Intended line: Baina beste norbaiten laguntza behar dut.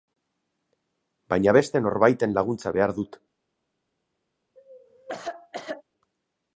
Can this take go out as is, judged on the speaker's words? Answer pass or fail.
pass